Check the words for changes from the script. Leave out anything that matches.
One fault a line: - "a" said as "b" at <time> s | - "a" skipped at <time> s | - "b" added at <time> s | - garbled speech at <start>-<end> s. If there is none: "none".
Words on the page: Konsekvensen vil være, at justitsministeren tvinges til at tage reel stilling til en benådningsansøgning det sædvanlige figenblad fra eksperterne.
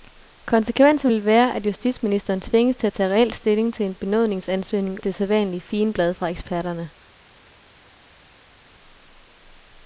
none